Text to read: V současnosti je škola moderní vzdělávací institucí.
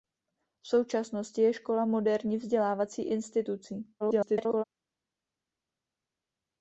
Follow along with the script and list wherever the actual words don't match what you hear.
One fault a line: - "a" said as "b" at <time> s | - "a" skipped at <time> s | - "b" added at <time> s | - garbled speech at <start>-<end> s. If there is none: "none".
- garbled speech at 4.0-4.6 s